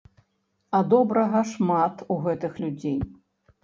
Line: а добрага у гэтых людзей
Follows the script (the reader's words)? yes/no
no